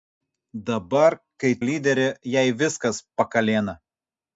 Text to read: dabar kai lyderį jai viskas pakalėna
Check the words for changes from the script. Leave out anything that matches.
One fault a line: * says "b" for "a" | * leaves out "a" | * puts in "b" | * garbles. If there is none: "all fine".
all fine